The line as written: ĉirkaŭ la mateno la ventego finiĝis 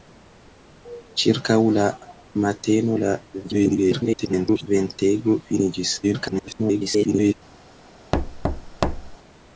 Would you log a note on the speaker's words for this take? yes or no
yes